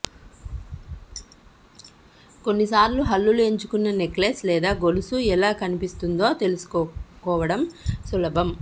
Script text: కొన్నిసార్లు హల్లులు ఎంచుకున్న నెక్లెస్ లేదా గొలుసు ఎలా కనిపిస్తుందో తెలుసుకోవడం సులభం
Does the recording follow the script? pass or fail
pass